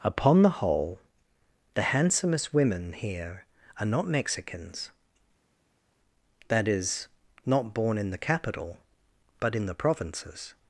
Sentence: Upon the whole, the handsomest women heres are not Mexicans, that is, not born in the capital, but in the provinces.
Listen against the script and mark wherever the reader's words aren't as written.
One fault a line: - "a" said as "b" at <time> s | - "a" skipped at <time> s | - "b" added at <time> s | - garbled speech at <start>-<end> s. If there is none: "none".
- "heres" said as "here" at 2.9 s